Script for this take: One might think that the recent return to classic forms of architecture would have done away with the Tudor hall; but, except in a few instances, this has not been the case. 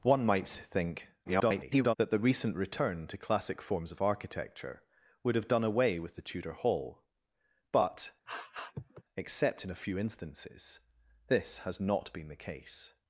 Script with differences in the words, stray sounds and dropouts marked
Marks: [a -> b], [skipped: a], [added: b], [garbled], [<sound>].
One might think [garbled] that the recent return to classic forms of architecture would have done away with the Tudor hall; but, [sniff] except in a few instances, this has not been the case.